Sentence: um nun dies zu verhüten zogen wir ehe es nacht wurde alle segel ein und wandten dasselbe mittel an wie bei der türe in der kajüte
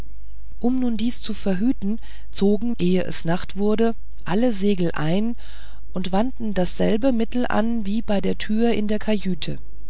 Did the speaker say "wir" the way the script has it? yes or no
no